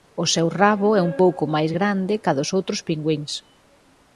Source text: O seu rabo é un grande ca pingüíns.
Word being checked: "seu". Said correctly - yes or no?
yes